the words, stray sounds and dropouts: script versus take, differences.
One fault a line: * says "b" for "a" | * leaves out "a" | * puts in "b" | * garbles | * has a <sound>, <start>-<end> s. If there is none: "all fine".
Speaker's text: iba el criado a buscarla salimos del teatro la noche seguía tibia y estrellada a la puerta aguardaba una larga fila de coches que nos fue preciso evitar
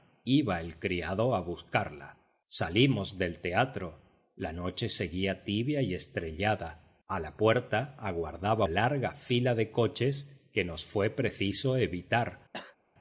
* leaves out "una"
* has a cough, 12.5-12.8 s